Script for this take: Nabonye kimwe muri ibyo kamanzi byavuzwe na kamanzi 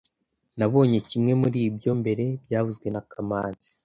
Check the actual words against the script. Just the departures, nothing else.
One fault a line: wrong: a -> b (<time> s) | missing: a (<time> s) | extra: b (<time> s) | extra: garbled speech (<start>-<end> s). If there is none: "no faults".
wrong: kamanzi -> mbere (2.0 s)